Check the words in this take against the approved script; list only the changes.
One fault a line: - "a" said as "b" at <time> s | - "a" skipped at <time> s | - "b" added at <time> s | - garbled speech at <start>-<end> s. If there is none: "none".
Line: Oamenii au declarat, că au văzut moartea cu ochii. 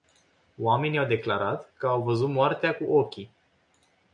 none